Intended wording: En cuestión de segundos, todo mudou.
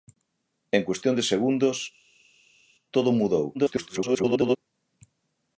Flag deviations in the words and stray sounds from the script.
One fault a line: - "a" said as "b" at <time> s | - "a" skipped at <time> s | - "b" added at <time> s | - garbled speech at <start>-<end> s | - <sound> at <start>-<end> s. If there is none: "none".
- garbled speech at 3.5-4.6 s